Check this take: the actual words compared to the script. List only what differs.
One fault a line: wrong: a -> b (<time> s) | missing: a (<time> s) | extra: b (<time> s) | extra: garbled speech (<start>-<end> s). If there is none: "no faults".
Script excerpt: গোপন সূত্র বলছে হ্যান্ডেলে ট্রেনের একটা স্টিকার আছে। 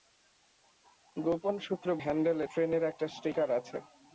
missing: বলছে (1.9 s)